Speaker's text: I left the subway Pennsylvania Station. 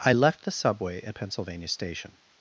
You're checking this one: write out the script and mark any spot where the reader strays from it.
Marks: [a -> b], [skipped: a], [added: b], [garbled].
I left the subway [added: at] Pennsylvania Station.